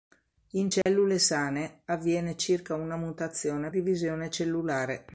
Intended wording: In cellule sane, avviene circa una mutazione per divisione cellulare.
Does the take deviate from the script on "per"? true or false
true